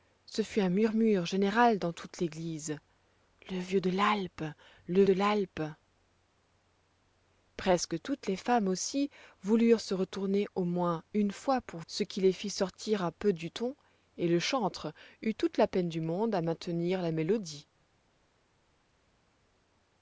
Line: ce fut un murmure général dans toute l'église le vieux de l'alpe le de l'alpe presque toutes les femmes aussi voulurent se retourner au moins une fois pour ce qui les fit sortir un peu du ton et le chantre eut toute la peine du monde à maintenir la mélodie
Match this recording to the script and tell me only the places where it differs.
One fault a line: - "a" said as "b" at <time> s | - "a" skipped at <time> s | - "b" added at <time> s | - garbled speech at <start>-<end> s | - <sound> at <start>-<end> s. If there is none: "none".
none